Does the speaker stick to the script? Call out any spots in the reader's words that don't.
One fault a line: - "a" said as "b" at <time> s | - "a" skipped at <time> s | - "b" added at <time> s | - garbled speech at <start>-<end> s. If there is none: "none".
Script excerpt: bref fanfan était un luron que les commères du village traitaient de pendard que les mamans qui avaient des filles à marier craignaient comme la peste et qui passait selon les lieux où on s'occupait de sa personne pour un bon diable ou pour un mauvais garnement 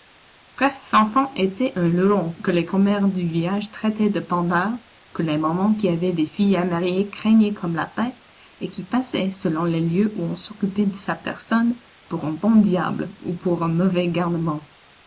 none